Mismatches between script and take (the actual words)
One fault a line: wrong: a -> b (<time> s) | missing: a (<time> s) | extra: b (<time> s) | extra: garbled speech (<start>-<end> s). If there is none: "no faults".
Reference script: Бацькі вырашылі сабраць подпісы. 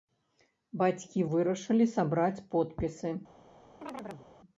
no faults